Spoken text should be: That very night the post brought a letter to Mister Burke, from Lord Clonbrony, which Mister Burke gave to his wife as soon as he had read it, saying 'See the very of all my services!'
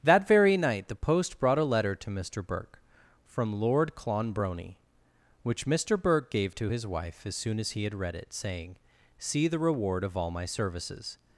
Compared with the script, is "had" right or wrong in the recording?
right